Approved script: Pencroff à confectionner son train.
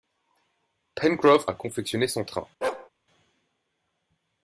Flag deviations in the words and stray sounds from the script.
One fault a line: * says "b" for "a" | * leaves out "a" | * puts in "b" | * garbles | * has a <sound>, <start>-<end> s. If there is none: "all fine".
* has a bark, 2.6-2.9 s